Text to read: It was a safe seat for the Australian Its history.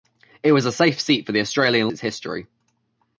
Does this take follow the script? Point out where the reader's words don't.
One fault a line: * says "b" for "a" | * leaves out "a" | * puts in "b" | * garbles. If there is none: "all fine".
all fine